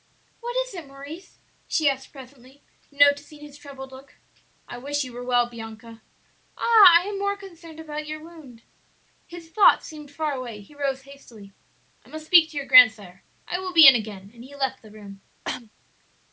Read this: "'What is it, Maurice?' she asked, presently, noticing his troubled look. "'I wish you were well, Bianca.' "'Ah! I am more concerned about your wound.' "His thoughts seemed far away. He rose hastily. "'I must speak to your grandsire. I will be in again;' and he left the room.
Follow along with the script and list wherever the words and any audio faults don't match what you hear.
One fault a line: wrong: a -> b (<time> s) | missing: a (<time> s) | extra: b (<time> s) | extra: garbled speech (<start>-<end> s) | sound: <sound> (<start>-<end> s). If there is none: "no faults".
sound: cough (15.4-15.7 s)